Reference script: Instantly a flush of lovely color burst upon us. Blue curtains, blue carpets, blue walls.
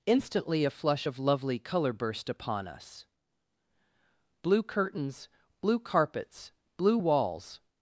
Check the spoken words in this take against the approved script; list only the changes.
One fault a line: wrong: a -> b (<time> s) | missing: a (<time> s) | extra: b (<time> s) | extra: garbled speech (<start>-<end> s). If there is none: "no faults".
no faults